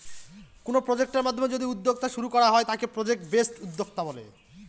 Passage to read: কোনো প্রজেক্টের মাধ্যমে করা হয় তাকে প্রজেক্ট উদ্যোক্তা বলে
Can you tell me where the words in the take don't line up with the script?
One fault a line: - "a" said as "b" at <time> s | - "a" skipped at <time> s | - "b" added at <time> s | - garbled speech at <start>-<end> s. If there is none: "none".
- "যদি উদ্যোক্তা শুরু" added at 1.5 s
- "বেসড" added at 3.3 s